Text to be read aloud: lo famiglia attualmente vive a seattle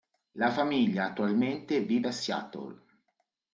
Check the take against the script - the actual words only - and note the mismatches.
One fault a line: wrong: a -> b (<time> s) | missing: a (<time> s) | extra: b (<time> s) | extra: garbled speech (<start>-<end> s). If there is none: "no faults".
wrong: lo -> la (0.3 s)